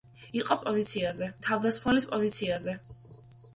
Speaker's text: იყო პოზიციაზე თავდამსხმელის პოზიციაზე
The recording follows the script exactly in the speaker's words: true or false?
true